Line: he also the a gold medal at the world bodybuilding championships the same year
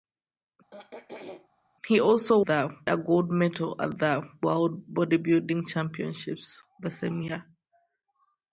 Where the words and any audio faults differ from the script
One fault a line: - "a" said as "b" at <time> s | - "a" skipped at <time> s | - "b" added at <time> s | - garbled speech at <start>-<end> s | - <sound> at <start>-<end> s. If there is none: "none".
- throat clearing at 0.7-1.5 s